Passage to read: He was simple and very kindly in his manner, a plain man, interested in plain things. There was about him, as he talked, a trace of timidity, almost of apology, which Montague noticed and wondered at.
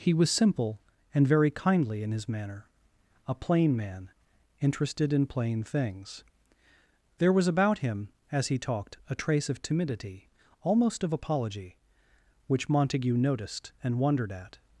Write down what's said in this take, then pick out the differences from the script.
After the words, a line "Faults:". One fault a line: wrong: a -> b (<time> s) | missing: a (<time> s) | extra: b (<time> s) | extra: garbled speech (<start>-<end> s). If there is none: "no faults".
He was simple and very kindly in his manner, a plain man, interested in plain things. There was about him, as he talked, a trace of timidity, almost of apology, which Montague noticed and wondered at.
Faults:
no faults